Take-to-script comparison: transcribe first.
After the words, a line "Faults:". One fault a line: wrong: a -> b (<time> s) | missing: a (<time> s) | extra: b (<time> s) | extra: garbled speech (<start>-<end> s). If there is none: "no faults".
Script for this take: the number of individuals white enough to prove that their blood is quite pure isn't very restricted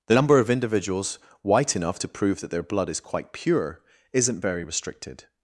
the number of individuals white enough to prove that their blood is quite pure isn't very restricted
Faults:
no faults